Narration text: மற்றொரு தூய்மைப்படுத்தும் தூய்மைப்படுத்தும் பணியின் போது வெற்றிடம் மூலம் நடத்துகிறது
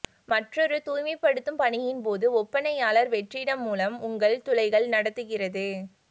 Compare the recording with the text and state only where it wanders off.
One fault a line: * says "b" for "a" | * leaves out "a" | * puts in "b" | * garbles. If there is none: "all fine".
* leaves out "தூய்மைப்படுத்தும்"
* puts in "ஒப்பனையாளர்"
* puts in "உங்கள் துளைகள்"